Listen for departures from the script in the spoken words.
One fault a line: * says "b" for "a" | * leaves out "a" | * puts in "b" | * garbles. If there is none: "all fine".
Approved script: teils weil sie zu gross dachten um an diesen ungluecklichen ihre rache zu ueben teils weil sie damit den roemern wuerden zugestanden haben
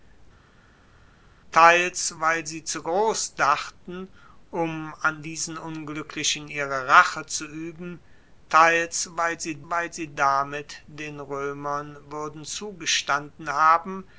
* puts in "weil sie"